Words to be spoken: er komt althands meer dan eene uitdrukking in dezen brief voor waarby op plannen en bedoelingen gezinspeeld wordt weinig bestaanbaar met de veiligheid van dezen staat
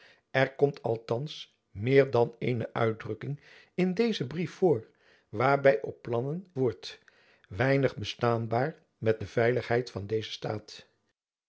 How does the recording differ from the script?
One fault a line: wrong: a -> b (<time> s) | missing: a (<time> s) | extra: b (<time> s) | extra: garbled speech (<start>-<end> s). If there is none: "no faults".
missing: en bedoelingen gezinspeeld (6.5 s)